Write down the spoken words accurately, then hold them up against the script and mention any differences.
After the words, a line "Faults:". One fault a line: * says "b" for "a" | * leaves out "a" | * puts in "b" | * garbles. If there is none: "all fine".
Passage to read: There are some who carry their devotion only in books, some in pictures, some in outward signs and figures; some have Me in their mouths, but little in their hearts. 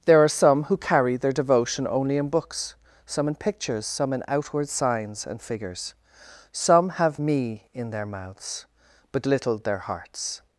There are some who carry their devotion only in books, some in pictures, some in outward signs and figures; some have Me in their mouths, but little their hearts.
Faults:
* leaves out "in"